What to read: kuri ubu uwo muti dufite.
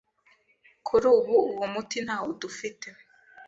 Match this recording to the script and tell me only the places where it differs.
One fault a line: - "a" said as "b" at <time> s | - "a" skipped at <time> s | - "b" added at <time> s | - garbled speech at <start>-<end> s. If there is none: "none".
- "ntawo" added at 2.0 s